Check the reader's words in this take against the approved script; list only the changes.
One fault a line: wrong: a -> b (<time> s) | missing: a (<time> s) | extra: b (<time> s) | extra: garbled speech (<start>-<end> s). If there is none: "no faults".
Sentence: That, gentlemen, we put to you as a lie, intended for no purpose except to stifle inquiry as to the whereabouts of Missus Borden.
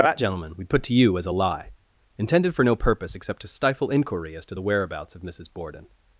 no faults